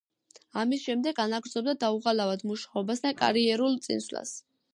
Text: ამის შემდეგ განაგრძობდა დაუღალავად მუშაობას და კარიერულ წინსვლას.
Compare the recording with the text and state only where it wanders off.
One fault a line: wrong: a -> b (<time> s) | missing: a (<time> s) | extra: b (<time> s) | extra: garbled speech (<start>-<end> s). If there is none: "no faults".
no faults